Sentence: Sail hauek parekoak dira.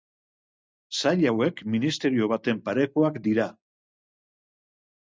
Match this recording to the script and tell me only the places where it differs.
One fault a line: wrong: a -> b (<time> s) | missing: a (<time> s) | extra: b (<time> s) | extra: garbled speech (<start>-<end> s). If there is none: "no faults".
extra: ministerio baten (1.7 s)